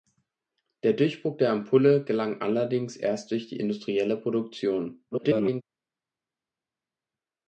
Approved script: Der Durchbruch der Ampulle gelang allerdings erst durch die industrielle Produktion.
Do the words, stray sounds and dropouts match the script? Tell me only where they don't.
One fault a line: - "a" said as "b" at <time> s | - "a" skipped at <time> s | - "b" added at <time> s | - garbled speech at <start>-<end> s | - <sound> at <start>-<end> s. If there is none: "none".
- garbled speech at 5.1-5.6 s